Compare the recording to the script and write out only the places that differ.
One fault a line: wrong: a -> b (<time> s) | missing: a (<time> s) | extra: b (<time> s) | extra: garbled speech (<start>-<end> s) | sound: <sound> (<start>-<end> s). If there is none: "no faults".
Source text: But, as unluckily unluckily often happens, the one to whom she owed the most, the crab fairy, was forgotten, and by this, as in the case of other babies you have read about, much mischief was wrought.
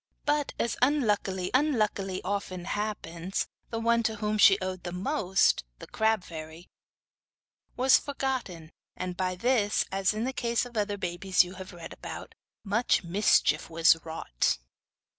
no faults